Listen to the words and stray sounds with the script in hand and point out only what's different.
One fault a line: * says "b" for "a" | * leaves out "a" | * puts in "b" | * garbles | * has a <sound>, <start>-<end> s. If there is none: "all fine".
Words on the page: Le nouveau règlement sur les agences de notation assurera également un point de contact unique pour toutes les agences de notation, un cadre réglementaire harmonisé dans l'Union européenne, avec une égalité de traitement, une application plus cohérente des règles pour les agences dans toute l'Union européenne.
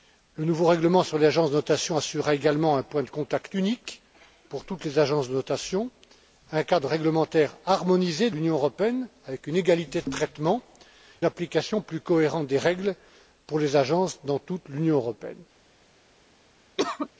* leaves out "dans"
* leaves out "une"
* has a cough, 16.8-17.1 s